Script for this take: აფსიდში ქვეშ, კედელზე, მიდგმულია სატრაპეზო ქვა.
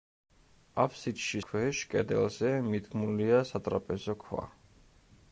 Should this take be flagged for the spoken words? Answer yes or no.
no